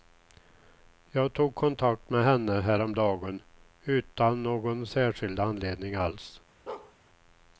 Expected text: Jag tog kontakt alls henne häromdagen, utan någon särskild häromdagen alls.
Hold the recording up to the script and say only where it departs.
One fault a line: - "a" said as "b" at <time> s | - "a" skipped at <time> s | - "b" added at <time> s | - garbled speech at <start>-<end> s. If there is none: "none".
- "alls" said as "med" at 2.1 s
- "häromdagen" said as "anledning" at 5.4 s